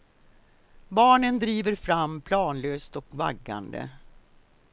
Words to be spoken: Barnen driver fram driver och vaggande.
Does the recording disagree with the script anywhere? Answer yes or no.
yes